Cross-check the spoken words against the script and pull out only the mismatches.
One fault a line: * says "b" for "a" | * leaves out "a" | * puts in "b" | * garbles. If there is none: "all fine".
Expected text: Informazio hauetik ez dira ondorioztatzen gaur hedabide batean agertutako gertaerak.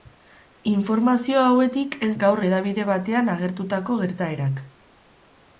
* leaves out "dira ondorioztatzen"